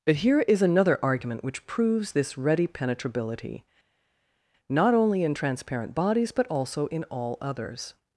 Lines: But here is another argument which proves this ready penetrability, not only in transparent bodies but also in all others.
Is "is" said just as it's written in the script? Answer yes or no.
yes